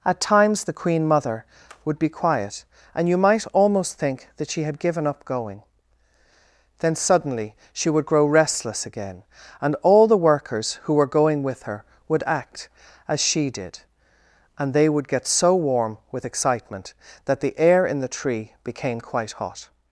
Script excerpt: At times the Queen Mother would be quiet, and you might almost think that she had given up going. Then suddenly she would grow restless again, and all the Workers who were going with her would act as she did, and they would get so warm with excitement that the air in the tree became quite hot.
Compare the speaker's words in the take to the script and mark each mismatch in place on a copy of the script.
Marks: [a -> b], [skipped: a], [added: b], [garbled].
At times the Queen Mother would be quiet, and you might almost think that she had given up going. Then suddenly she would grow restless again, and all the Workers who were going with her would act as she did, and they would get so warm with excitement that the air in the tree became quite hot.